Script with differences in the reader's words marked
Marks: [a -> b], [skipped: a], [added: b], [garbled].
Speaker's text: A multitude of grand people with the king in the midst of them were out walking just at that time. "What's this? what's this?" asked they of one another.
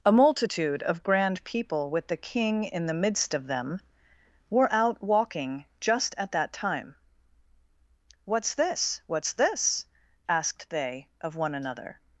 A multitude of grand people with the king in the midst of them were out walking just at that time. "What's this? what's this?" asked they of one another.